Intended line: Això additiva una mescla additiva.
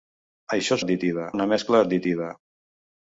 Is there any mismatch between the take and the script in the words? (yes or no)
no